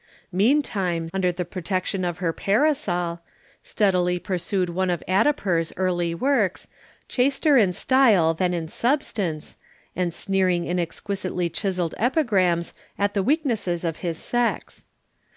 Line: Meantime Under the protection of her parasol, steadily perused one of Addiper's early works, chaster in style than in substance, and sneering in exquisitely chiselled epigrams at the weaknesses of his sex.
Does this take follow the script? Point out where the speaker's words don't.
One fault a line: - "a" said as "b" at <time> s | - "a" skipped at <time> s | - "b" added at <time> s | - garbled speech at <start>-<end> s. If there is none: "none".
none